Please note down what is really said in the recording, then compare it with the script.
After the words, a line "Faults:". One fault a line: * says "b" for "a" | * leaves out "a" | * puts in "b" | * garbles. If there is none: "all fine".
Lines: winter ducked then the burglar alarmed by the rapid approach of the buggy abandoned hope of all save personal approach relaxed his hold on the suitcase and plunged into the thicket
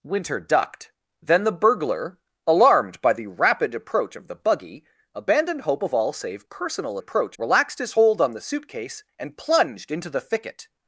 winter ducked then the burglar alarmed by the rapid approach of the buggy abandoned hope of all save personal approach relaxed his hold on the suitcase and plunged into the thicket
Faults:
all fine